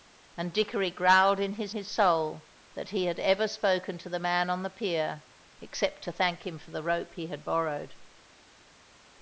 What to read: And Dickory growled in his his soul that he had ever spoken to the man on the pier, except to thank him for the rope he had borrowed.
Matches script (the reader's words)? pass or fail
pass